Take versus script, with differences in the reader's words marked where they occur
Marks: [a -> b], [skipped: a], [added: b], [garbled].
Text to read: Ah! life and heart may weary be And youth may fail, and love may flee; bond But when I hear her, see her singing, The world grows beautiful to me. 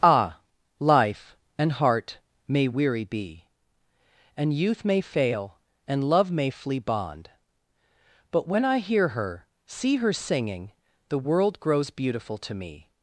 Ah! life and heart may weary be And youth may fail, and love may flee; bond But when I hear her, see her singing, The world grows beautiful to me.